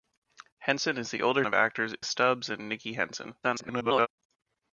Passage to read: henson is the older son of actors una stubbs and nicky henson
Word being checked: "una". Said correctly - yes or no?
no